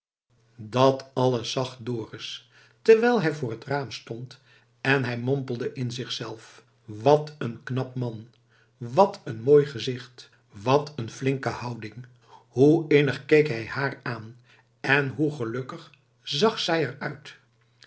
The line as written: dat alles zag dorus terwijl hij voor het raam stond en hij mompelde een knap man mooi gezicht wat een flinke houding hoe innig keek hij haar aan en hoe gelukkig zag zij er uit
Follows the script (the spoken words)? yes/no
no